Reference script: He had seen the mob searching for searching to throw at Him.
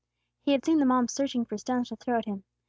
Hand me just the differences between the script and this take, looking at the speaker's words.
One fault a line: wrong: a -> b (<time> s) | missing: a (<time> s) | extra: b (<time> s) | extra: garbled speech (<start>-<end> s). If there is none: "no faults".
wrong: searching -> stones (1.6 s)